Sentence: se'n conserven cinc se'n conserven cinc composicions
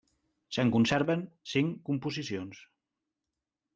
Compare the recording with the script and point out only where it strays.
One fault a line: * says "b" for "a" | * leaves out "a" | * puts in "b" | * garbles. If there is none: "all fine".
* leaves out "se'n conserven cinc"